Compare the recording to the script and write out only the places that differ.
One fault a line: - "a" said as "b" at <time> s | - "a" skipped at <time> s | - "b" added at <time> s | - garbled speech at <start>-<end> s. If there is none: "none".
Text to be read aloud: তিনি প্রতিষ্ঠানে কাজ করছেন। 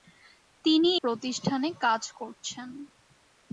none